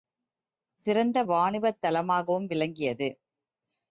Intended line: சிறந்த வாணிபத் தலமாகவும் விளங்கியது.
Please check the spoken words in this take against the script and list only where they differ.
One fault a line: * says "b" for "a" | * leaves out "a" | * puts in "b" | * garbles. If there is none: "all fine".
all fine